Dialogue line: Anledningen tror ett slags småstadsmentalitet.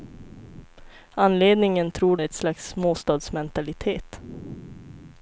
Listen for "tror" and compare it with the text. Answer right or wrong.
right